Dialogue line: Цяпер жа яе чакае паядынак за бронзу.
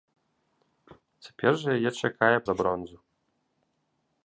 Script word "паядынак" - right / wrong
wrong